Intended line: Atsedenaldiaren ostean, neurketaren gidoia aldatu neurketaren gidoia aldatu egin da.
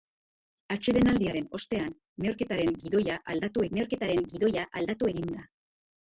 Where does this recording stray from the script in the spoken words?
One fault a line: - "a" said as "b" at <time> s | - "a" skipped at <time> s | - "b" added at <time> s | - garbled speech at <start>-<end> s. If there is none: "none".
none